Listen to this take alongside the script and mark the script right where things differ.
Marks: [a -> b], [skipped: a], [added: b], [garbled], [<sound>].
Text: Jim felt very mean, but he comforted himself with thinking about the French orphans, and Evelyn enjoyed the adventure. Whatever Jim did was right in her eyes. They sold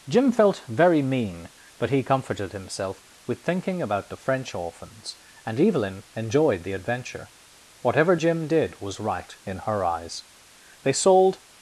Jim felt very mean, but he comforted himself with thinking about the French orphans, and Evelyn enjoyed the adventure. Whatever Jim did was right in her eyes. They sold